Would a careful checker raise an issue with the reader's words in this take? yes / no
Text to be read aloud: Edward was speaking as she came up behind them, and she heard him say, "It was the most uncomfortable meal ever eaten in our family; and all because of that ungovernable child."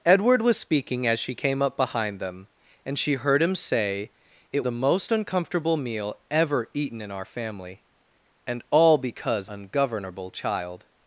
yes